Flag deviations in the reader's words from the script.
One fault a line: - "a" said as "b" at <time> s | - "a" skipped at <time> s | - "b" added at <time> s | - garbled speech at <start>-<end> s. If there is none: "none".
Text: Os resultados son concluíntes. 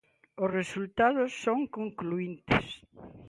none